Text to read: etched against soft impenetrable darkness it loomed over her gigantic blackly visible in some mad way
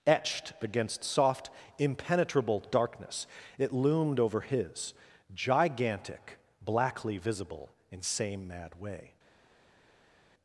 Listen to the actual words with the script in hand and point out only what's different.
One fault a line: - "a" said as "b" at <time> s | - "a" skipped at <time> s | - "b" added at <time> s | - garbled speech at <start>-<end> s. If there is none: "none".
- "her" said as "his" at 4.4 s
- "some" said as "same" at 8.0 s